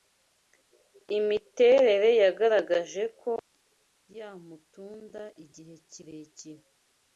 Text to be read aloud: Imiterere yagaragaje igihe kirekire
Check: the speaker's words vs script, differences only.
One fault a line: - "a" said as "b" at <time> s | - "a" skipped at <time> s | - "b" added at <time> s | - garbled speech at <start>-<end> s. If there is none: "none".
- "ko yamutunda" added at 3.2 s